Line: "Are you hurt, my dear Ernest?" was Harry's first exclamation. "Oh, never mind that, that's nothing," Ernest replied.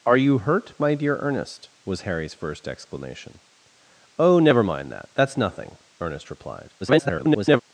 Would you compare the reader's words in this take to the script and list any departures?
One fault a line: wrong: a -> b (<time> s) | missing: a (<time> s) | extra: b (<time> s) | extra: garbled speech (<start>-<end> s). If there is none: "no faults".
extra: garbled speech (6.8-7.6 s)